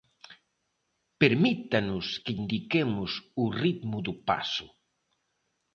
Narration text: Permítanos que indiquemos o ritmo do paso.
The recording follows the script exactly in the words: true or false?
true